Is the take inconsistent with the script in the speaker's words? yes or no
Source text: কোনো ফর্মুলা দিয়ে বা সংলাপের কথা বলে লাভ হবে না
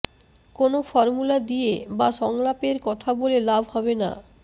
no